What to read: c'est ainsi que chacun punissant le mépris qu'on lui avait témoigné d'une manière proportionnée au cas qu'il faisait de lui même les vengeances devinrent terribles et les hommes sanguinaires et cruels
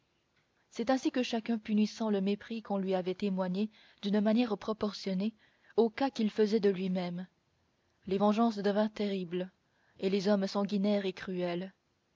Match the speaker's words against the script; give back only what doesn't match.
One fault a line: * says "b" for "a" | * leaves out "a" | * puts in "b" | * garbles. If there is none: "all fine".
all fine